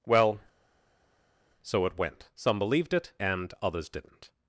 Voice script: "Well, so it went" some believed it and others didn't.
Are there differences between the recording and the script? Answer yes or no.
no